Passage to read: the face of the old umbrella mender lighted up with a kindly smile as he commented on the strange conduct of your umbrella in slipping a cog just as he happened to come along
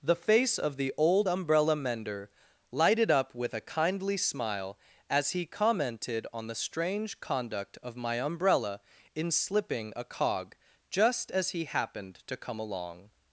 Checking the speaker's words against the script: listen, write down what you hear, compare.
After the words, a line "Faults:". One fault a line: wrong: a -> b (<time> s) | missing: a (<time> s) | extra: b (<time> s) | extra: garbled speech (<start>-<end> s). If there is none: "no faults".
the face of the old umbrella mender lighted up with a kindly smile as he commented on the strange conduct of my umbrella in slipping a cog just as he happened to come along
Faults:
wrong: your -> my (8.0 s)